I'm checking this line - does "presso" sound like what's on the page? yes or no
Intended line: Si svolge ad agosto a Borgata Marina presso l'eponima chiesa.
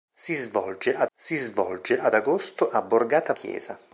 no